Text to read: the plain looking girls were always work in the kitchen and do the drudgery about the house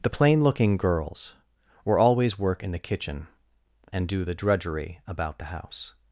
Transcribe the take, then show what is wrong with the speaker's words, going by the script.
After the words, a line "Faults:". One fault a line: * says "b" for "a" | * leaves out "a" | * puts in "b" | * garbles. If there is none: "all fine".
the plain looking girls were always work in the kitchen and do the drudgery about the house
Faults:
all fine